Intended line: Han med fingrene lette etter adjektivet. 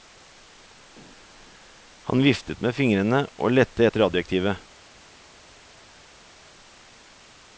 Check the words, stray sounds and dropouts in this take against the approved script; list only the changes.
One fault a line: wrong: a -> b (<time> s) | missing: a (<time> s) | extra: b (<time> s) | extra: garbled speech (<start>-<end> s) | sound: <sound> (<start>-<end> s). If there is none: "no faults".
extra: viftet (2.2 s)
extra: og (3.4 s)